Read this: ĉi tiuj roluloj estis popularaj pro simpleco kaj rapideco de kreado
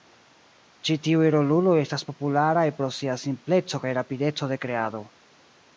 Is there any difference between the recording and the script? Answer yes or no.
yes